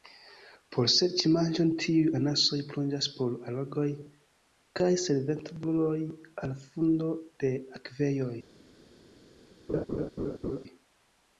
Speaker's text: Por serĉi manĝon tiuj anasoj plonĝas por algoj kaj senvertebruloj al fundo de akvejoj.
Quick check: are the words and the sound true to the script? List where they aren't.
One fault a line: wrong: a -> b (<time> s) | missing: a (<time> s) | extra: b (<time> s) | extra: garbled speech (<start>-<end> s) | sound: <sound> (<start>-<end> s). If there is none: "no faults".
sound: laugh (9.7-10.6 s)